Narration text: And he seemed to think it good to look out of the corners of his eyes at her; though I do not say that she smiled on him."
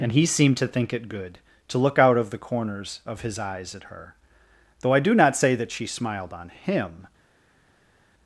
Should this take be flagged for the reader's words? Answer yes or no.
no